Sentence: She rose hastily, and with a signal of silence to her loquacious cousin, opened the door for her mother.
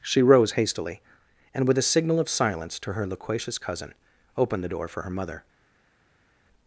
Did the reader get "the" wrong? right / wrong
right